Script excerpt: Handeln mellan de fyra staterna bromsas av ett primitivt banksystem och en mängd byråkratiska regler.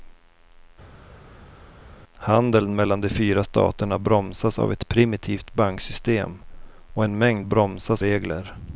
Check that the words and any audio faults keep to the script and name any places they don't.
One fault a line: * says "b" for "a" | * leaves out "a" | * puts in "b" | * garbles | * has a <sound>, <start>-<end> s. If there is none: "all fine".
* says "bromsas" for "byråkratiska"